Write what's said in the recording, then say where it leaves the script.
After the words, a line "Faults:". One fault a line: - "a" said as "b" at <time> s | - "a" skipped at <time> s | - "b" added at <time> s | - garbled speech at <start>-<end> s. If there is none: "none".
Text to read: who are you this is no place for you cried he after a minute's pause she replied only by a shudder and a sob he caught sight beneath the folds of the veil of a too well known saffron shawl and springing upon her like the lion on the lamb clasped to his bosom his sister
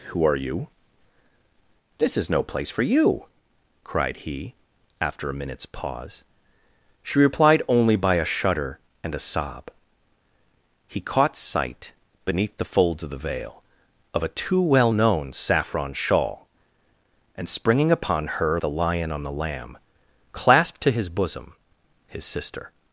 who are you this is no place for you cried he after a minute's pause she replied only by a shudder and a sob he caught sight beneath the folds of the veil of a too well known saffron shawl and springing upon her the lion on the lamb clasped to his bosom his sister
Faults:
- "like" skipped at 18.6 s